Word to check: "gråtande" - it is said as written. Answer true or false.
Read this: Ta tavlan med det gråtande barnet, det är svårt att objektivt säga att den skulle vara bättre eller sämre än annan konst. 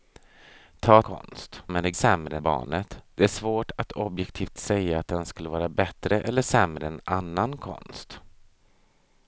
false